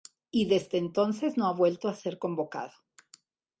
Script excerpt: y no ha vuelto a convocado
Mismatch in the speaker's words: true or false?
true